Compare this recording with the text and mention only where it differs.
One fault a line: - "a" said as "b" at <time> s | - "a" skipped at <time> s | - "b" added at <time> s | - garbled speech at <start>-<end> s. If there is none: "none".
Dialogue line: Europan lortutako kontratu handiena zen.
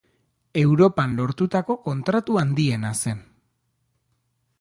none